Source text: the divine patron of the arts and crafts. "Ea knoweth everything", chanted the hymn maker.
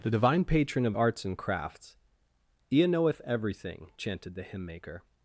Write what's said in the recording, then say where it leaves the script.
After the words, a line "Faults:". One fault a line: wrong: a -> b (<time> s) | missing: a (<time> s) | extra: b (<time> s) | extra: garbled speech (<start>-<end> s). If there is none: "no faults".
the divine patron of arts and crafts. "Ea knoweth everything", chanted the hymn maker.
Faults:
missing: the (1.0 s)